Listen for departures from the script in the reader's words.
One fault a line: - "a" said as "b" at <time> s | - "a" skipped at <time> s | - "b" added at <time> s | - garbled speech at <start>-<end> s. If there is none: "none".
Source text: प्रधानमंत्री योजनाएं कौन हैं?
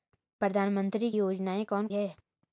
none